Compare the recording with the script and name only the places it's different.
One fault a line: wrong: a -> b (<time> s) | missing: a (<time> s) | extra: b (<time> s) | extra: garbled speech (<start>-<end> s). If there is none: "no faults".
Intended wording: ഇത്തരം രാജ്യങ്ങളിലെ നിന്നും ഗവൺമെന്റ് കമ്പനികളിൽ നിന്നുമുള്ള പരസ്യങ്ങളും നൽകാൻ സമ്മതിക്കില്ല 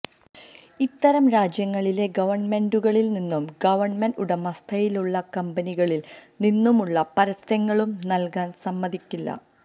extra: ഗവൺമെന്റുകളിൽ (2.1 s)
extra: ഉടമസ്ഥതയിലുള്ള (4.2 s)